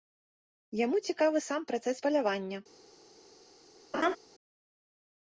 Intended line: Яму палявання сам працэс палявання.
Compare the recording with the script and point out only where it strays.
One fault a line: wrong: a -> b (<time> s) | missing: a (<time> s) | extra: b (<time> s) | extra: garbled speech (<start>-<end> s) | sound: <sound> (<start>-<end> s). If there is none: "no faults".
wrong: палявання -> цікавы (1.1 s)
sound: laugh (3.9-4.2 s)